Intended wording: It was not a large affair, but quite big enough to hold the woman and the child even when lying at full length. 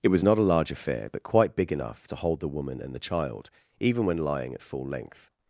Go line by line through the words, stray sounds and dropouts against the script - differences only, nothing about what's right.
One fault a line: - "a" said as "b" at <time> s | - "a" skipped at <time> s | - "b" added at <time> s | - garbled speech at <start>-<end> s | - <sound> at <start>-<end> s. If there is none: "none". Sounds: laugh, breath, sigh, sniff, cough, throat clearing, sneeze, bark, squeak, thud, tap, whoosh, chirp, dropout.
none